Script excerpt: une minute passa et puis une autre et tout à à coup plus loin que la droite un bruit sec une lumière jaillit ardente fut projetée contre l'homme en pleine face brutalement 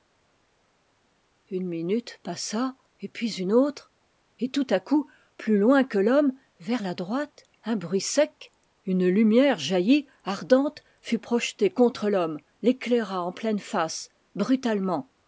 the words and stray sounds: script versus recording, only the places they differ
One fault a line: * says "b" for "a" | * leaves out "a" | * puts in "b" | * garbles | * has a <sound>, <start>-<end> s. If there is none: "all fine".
* leaves out "à"
* puts in "l'homme vers"
* puts in "l'éclaira"